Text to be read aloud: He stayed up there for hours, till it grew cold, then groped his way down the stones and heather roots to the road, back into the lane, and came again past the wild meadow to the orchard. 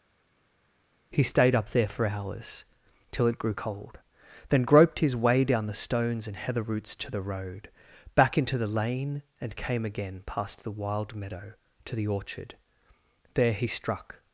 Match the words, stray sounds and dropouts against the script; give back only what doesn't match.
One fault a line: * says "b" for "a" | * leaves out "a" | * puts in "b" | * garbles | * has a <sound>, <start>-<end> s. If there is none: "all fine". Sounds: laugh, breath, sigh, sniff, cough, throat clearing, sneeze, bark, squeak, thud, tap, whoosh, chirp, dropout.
* puts in "There he struck"